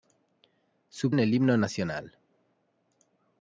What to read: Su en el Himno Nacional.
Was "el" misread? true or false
false